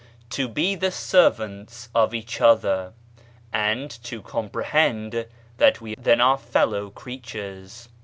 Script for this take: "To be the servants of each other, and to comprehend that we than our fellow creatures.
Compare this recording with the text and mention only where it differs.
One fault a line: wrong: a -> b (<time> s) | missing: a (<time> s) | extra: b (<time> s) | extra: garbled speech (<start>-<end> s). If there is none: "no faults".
no faults